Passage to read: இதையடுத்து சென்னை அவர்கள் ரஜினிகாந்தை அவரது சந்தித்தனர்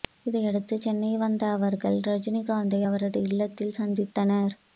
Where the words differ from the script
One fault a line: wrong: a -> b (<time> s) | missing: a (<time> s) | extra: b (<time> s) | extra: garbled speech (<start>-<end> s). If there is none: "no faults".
extra: வந்த (1.2 s)
extra: இல்லத்தில் (3.2 s)